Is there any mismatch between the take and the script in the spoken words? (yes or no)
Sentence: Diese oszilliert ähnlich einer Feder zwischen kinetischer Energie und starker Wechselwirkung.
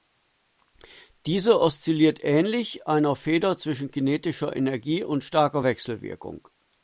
no